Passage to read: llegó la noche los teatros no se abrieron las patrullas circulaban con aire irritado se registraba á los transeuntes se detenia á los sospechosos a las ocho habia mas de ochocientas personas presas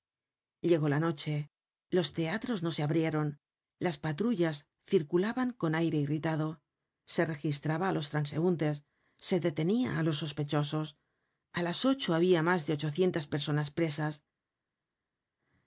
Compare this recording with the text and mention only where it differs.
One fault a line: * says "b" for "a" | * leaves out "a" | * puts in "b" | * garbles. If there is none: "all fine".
all fine